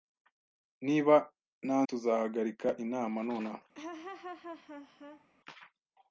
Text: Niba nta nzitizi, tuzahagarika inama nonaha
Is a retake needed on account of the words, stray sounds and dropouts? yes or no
yes